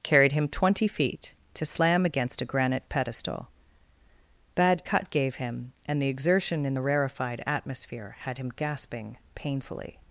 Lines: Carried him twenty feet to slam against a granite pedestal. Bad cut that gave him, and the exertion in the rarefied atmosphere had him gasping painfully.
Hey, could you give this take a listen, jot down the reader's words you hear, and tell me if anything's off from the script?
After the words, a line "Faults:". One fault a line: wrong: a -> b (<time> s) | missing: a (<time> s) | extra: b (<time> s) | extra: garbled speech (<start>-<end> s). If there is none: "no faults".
Carried him twenty feet to slam against a granite pedestal. Bad cut gave him, and the exertion in the rarefied atmosphere had him gasping painfully.
Faults:
missing: that (5.1 s)